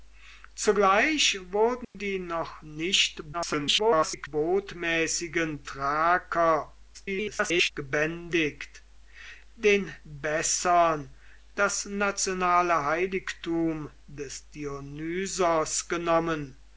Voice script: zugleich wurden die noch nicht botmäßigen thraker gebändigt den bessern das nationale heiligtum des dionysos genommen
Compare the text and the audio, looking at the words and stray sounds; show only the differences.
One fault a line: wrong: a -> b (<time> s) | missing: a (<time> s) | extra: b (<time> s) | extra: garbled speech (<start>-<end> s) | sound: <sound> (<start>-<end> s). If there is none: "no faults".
sound: dropout (1.8-1.9 s)
extra: garbled speech (3.3-4.3 s)
extra: garbled speech (6.9-7.7 s)